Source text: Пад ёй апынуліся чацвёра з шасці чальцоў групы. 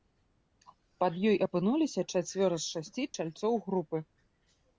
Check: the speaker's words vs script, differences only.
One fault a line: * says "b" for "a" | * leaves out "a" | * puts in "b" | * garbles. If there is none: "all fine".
all fine